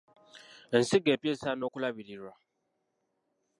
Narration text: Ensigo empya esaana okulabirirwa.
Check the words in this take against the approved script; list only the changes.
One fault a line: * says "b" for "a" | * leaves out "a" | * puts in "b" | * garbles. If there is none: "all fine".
all fine